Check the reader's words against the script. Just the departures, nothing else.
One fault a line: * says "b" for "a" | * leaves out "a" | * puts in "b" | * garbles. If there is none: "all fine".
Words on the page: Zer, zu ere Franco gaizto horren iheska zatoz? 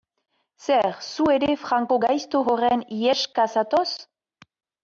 all fine